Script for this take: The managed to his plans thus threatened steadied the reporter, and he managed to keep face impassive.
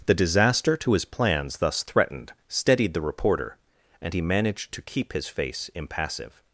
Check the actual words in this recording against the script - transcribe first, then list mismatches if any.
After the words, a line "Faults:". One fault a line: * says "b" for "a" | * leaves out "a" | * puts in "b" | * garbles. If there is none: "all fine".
The disaster to his plans thus threatened steadied the reporter, and he managed to keep his face impassive.
Faults:
* says "disaster" for "managed"
* puts in "his"